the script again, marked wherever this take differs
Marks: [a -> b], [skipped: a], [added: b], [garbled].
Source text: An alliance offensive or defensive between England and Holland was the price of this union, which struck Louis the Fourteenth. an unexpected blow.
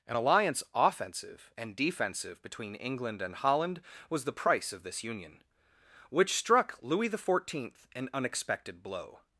An alliance offensive [or -> and] defensive between England and Holland was the price of this union, which struck Louis the Fourteenth. an unexpected blow.